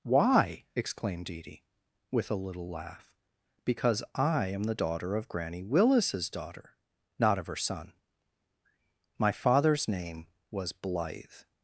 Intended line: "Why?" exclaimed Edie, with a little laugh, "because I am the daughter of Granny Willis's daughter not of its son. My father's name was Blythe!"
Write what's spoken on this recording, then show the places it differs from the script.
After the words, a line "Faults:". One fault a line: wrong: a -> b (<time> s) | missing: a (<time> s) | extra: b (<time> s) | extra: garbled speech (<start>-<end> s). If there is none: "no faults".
"Why?" exclaimed Edie, with a little laugh, "because I am the daughter of Granny Willis's daughter not of her son. My father's name was Blythe!"
Faults:
wrong: its -> her (7.5 s)